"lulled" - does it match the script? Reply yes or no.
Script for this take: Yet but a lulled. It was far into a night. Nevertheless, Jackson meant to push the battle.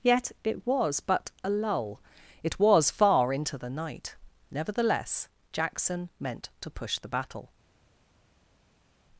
no